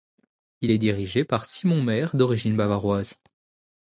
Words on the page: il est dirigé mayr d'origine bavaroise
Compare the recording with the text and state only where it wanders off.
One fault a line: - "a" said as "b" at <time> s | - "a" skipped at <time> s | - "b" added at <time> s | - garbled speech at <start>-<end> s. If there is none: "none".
- "par simon" added at 1.2 s